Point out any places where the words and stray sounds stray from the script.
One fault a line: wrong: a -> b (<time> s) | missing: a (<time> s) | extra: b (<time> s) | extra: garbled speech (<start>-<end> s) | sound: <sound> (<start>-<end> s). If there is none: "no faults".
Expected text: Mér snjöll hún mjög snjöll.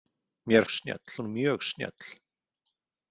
no faults